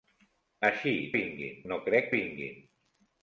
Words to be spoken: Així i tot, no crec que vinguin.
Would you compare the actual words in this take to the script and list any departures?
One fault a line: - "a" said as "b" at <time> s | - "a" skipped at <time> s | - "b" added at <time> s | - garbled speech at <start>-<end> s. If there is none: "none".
- "tot" said as "vinguin" at 1.2 s
- "que" skipped at 2.1 s